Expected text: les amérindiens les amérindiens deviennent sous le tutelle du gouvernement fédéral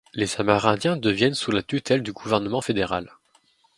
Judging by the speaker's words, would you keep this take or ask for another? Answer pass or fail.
fail